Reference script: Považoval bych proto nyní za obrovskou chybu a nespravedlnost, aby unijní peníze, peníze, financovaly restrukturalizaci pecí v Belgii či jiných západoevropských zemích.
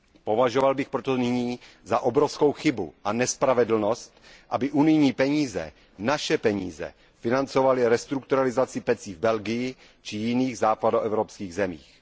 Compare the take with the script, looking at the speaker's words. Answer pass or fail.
fail